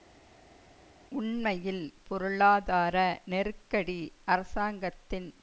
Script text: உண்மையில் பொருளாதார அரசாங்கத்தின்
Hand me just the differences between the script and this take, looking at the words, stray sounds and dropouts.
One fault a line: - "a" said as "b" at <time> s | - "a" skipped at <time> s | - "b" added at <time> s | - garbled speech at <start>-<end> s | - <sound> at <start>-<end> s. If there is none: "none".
- "நெருக்கடி" added at 3.3 s